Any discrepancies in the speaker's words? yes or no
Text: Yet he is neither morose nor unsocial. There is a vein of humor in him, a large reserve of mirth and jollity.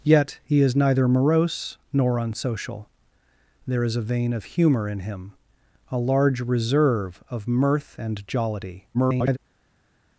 yes